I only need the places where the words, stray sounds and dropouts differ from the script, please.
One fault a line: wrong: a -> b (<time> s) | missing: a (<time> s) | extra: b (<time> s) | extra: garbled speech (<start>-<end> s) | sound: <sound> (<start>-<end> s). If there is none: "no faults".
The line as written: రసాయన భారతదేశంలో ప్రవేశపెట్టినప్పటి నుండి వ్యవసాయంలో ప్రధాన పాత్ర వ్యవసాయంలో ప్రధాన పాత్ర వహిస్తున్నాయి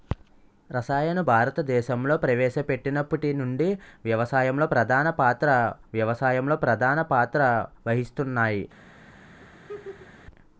sound: laugh (9.4-10.2 s)